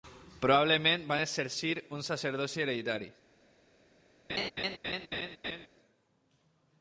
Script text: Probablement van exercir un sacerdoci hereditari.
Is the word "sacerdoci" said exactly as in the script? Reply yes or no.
yes